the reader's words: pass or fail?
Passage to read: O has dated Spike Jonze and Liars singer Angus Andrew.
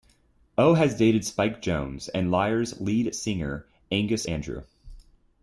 fail